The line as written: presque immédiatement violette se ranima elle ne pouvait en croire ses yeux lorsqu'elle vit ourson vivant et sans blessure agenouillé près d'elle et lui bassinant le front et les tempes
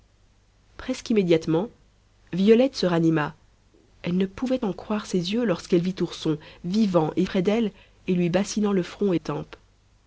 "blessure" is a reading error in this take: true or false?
true